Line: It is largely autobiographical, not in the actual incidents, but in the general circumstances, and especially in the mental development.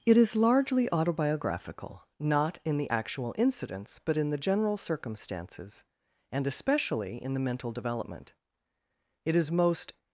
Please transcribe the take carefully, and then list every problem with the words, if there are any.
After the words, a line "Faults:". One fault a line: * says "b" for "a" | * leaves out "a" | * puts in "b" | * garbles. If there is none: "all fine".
It is largely autobiographical, not in the actual incidents, but in the general circumstances, and especially in the mental development. It is most
Faults:
* puts in "It is most"